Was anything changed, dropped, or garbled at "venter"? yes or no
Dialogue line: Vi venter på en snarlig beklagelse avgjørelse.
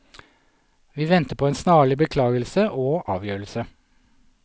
no